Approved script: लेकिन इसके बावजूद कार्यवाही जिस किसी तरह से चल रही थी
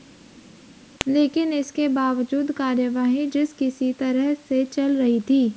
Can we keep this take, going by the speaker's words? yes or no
yes